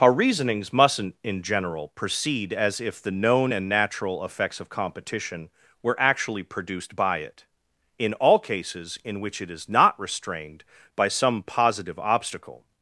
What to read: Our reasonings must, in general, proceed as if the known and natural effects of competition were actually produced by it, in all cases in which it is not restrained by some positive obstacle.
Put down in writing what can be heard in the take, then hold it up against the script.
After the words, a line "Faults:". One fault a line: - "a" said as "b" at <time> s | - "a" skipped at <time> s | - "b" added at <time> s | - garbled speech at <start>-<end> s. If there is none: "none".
Our reasonings mustn't, in general, proceed as if the known and natural effects of competition were actually produced by it, in all cases in which it is not restrained by some positive obstacle.
Faults:
- "must" said as "mustn't" at 0.7 s